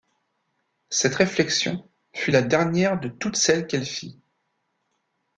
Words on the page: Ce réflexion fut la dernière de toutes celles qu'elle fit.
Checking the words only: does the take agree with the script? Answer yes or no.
no